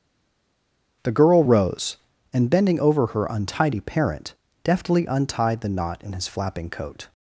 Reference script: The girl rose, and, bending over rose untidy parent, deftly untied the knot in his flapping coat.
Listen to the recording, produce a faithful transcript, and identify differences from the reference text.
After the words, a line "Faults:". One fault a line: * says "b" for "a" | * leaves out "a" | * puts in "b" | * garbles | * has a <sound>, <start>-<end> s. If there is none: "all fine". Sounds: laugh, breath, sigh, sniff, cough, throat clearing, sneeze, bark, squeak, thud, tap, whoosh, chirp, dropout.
The girl rose, and, bending over her untidy parent, deftly untied the knot in his flapping coat.
Faults:
* says "her" for "rose"